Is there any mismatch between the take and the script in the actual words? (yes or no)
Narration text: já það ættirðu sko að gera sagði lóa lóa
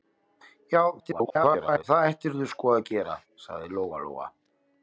yes